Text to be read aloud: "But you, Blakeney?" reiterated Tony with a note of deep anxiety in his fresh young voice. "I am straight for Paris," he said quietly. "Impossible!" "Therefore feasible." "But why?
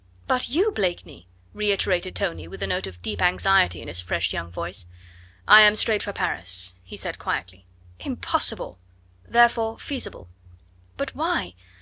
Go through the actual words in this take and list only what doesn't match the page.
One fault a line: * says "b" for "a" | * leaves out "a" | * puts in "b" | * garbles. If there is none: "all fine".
all fine